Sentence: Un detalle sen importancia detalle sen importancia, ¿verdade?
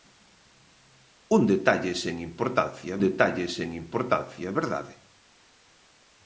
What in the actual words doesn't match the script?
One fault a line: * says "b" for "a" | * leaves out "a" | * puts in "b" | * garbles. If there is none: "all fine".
all fine